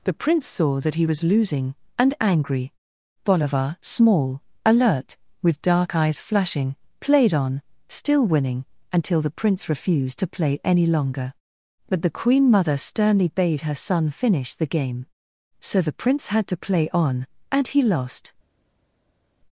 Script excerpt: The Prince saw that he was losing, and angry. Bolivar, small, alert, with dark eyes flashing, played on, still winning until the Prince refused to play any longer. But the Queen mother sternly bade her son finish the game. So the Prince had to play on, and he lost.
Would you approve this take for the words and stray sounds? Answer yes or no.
yes